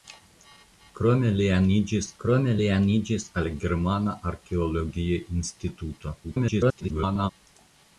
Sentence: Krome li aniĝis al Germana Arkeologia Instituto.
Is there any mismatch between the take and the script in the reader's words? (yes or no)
yes